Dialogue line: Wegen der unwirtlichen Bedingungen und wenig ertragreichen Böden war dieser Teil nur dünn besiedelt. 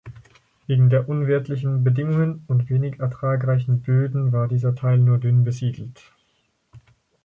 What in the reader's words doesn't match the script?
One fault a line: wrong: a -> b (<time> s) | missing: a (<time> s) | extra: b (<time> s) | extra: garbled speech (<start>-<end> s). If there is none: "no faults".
no faults